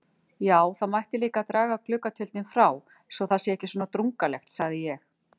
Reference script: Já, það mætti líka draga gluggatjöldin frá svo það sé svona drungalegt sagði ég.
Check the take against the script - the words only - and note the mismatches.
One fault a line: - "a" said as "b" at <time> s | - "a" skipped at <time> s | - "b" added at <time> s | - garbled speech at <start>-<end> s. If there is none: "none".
- "ekki" added at 3.6 s